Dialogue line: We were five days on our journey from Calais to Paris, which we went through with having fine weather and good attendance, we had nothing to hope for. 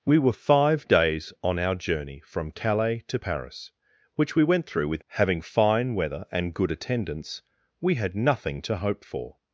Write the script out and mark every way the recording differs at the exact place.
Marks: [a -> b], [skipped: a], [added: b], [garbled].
We were five days on our journey from Calais to Paris, which we went through with having fine weather and good attendance, we had nothing to hope for.